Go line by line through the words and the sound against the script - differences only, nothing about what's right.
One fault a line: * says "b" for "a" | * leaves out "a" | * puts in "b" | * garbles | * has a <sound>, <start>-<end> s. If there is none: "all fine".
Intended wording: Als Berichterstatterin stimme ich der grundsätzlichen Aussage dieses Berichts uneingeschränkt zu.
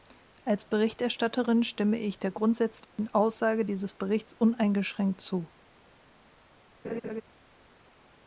* has a dropout, 2.8-3.0 s
* has a laugh, 6.8-7.2 s